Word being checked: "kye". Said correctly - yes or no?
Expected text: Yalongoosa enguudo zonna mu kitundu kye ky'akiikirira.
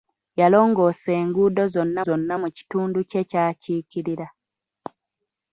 yes